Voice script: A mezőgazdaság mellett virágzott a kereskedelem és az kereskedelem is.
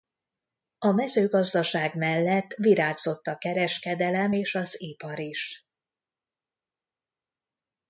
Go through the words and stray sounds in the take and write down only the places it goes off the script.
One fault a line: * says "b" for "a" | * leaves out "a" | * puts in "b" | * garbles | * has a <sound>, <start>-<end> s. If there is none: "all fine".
* says "ipar" for "kereskedelem"